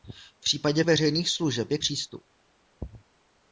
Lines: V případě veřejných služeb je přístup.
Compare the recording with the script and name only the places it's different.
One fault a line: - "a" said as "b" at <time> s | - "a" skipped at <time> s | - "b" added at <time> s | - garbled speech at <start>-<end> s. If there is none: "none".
none